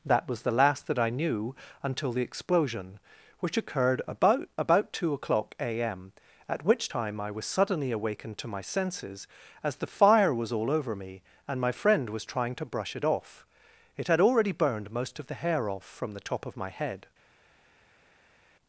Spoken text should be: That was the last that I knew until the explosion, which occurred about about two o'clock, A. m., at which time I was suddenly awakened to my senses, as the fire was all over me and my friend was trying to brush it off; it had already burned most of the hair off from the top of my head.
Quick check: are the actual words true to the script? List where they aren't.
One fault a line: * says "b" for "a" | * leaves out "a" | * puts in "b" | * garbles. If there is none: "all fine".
all fine